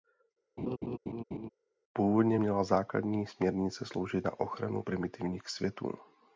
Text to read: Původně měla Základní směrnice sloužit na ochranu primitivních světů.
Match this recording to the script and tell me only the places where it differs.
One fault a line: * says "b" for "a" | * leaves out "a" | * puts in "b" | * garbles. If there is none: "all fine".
all fine